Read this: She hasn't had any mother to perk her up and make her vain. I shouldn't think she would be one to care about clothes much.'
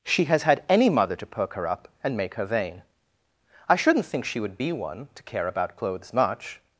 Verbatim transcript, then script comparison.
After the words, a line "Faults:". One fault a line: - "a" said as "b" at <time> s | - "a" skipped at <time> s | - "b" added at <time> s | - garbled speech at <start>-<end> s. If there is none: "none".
She has had any mother to perk her up and make her vain. I shouldn't think she would be one to care about clothes much.'
Faults:
- "hasn't" said as "has" at 0.2 s